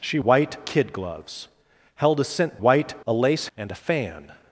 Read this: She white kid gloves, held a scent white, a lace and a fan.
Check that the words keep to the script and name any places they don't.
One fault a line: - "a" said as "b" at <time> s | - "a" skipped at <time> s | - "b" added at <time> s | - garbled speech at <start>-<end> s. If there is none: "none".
none